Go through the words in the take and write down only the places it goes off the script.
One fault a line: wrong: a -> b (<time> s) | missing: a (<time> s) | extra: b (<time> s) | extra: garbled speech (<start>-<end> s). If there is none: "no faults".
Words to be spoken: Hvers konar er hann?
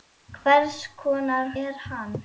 no faults